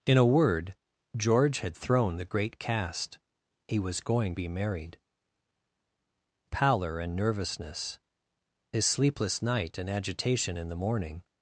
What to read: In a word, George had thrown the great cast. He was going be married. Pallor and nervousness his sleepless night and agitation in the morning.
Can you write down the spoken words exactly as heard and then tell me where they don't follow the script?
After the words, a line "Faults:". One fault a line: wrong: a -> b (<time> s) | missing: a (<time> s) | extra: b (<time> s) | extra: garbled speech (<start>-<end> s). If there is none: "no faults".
In a word, George had thrown the great cast. He was going be married. Pallor and nervousness his sleepless night and agitation in the morning.
Faults:
no faults